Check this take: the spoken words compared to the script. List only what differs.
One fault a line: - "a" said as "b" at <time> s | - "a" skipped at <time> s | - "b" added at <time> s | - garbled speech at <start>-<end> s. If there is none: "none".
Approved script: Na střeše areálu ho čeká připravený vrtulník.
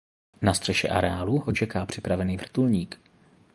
none